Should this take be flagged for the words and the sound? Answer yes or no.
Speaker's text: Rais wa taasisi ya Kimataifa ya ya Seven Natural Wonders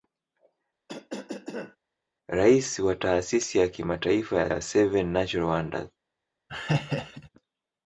yes